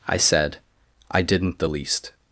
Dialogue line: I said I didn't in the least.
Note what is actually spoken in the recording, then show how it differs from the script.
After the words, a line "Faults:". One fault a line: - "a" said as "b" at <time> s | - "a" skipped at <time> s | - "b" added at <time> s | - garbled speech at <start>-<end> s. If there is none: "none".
I said I didn't the least.
Faults:
- "in" skipped at 1.6 s